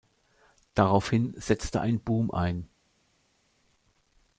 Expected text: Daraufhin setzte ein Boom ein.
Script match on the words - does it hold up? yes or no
yes